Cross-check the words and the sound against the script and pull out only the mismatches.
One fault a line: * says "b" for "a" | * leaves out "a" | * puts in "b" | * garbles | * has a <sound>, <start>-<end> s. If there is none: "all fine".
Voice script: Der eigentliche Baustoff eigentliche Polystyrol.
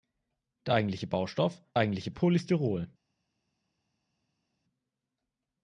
all fine